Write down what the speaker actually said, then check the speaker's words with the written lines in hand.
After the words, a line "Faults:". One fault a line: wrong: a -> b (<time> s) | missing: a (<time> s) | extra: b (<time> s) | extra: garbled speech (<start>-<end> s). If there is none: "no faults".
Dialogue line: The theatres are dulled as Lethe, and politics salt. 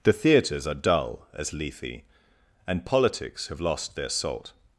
The theatres are dull as Lethe, and politics have lost their salt.
Faults:
wrong: dulled -> dull (0.7 s)
extra: have lost their (3.5 s)